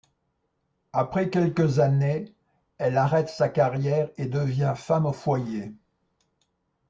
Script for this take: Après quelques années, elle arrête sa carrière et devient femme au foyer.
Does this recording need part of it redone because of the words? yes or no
no